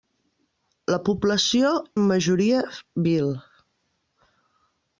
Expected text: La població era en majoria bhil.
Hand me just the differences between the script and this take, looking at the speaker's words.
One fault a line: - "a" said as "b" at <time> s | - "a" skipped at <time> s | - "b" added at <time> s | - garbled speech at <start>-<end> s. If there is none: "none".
- "era" skipped at 1.7 s